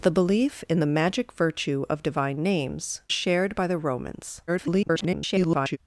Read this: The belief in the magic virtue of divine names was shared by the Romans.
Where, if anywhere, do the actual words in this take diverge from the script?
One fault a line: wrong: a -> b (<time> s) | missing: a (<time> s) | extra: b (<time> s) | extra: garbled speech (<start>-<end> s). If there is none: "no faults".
missing: was (3.0 s)
extra: garbled speech (4.5-5.8 s)